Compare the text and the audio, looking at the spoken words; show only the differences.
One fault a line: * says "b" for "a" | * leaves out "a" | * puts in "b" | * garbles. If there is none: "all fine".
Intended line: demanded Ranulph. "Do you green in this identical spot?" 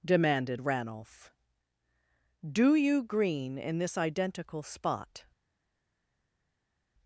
all fine